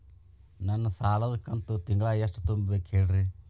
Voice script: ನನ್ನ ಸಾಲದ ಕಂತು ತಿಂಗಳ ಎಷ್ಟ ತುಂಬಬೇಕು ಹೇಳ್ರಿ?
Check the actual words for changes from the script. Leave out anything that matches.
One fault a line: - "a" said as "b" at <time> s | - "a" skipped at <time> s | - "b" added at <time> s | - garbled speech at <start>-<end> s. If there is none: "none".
none